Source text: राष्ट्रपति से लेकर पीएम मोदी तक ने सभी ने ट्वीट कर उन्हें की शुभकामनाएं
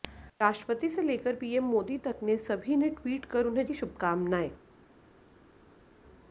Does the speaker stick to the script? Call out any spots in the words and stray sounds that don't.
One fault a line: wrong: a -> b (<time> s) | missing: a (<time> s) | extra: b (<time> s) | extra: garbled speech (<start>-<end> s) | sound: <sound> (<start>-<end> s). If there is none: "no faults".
no faults